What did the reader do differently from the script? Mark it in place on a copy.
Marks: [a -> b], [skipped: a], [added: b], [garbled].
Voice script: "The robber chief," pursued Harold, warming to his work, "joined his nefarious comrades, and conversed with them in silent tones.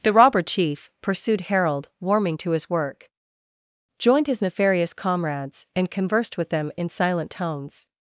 "The robber chief," pursued Harold, warming to his work, "joined his nefarious comrades, and conversed with them in silent tones.